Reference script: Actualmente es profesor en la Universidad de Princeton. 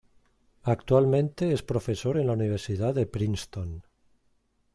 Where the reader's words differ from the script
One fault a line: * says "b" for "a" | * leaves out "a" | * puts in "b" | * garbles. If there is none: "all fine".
all fine